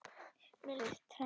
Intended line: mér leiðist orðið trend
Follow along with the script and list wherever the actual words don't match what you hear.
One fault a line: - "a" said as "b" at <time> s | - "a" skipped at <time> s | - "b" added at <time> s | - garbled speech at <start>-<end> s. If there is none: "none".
- "leiðist orðið" skipped at 0.8 s